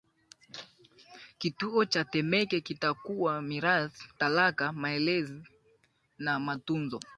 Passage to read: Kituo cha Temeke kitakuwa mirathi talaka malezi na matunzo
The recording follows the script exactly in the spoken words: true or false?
true